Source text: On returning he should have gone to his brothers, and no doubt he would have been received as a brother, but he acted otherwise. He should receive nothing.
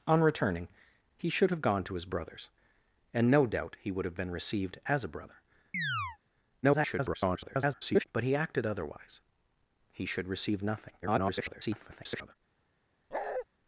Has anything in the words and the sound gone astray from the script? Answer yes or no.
yes